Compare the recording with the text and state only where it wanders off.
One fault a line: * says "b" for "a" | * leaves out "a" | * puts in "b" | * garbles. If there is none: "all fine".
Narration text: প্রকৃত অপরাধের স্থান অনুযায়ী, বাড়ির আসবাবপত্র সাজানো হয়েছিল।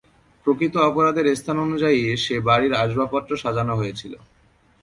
* puts in "সে"